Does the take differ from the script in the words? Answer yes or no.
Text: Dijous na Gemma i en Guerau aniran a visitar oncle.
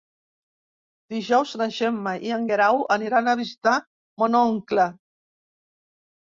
yes